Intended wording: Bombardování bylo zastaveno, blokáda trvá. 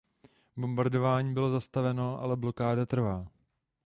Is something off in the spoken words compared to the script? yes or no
yes